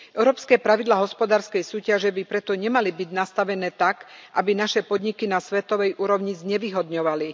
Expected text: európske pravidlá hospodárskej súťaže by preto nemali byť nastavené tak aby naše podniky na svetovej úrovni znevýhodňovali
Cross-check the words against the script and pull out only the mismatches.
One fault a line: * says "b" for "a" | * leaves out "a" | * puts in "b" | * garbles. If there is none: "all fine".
all fine